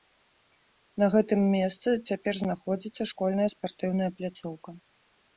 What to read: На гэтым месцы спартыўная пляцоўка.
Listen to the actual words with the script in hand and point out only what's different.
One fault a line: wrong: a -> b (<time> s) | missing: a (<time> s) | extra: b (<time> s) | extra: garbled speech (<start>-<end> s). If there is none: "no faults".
extra: цяпер знаходзіцца школьная (2.1 s)